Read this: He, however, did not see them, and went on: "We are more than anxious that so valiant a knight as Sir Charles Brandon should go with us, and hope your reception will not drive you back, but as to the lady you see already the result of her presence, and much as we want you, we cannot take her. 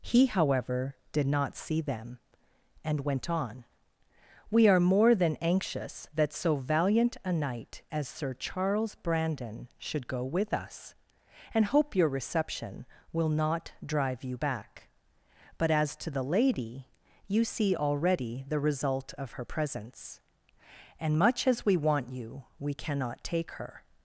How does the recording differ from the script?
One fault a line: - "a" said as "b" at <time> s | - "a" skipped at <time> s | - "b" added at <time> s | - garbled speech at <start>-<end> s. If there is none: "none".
none